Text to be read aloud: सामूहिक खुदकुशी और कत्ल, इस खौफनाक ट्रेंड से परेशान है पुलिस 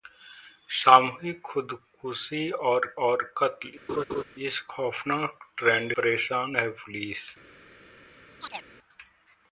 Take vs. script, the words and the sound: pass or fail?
fail